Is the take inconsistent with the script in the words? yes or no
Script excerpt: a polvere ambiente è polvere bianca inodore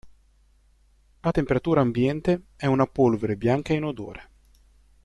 yes